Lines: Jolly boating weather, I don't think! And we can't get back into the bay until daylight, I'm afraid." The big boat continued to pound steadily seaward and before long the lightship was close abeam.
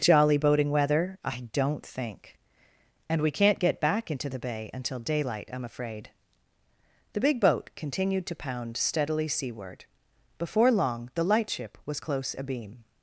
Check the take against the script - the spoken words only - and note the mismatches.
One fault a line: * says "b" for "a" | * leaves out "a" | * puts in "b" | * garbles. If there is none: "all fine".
* leaves out "and"